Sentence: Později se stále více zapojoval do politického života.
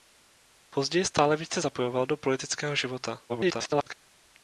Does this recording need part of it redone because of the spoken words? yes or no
yes